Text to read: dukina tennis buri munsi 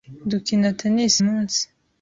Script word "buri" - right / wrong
wrong